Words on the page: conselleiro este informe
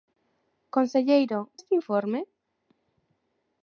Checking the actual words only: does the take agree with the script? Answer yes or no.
yes